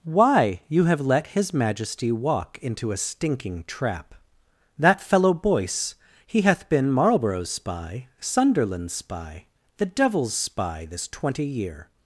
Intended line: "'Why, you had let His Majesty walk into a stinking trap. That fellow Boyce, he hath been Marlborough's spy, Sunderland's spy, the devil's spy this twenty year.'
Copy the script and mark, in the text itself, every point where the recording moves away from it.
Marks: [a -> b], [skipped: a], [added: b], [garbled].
"'Why, you [had -> have] let His Majesty walk into a stinking trap. That fellow Boyce, he hath been Marlborough's spy, Sunderland's spy, the devil's spy this twenty year.'